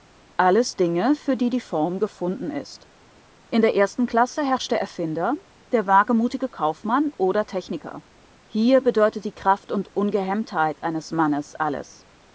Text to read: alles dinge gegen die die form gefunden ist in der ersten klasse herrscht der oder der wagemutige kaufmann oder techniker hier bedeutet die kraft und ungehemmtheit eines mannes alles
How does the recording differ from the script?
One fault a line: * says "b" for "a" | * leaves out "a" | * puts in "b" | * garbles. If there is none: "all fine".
* says "für" for "gegen"
* says "erfinder" for "oder"